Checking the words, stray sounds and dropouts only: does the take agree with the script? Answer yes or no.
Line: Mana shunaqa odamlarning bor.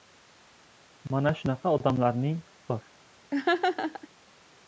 no